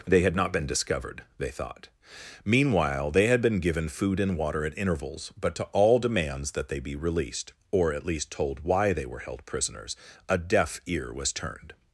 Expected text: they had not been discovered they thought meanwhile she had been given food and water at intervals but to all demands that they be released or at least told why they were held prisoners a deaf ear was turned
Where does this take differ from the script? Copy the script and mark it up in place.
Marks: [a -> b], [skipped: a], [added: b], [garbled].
they had not been discovered they thought meanwhile [she -> they] had been given food and water at intervals but to all demands that they be released or at least told why they were held prisoners a deaf ear was turned